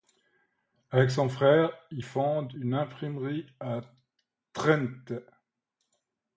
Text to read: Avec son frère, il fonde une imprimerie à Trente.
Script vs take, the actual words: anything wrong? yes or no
no